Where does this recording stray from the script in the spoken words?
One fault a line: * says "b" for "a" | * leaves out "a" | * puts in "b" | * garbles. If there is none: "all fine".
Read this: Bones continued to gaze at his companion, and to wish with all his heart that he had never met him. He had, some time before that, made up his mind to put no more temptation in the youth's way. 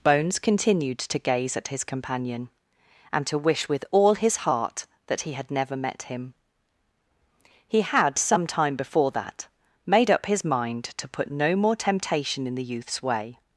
all fine